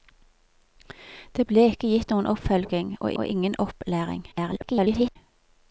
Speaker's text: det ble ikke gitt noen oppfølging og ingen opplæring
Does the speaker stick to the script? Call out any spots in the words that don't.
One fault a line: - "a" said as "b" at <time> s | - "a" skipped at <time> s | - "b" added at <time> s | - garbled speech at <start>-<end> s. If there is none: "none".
- "og" added at 3.1 s
- garbled speech at 4.3-5.2 s